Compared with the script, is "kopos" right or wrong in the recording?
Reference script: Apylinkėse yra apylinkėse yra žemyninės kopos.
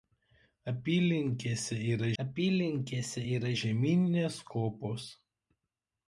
right